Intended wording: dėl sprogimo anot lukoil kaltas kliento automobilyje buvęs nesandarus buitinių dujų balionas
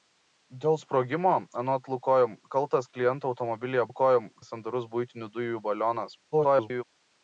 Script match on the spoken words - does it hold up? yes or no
no